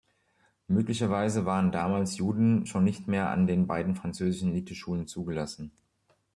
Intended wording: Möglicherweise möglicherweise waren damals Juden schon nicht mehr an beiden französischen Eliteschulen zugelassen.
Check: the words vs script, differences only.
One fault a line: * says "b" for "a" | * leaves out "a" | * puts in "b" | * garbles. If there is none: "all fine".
* leaves out "möglicherweise"
* puts in "den"